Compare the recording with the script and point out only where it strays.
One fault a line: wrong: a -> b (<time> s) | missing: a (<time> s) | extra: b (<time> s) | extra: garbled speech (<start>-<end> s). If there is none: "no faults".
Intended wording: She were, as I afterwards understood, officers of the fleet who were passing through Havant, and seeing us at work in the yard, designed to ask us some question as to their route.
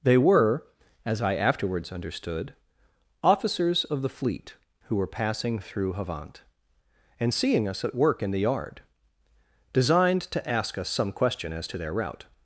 wrong: She -> They (0.0 s)